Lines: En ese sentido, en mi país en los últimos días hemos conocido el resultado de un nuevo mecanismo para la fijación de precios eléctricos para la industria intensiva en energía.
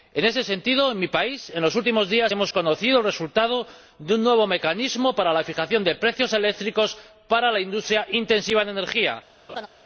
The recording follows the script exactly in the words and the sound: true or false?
false